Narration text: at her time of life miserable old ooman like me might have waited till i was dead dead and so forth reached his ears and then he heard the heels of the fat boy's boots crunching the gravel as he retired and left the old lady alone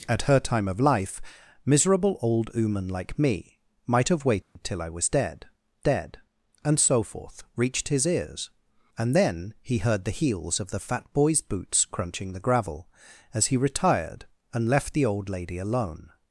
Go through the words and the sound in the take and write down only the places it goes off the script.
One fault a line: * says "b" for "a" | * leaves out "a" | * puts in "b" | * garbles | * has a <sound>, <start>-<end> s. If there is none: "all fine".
* has a dropout, 4.4-4.6 s